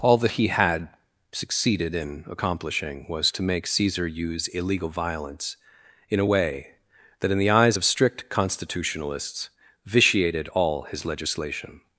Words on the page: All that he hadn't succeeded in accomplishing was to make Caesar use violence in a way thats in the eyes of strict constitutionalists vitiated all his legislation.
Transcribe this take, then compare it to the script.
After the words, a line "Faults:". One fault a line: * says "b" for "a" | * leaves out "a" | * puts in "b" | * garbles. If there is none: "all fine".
All that he had succeeded in accomplishing was to make Caesar use illegal violence in a way that in the eyes of strict constitutionalists vitiated all his legislation.
Faults:
* says "had" for "hadn't"
* puts in "illegal"
* says "that" for "thats"